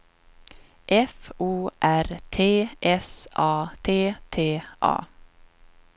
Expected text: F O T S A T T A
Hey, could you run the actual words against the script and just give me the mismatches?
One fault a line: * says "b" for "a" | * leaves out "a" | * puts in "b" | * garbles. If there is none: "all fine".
* puts in "R"